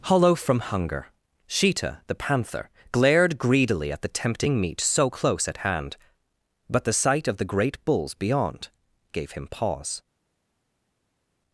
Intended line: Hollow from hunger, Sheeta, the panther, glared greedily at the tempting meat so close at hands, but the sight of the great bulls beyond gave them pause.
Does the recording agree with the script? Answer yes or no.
no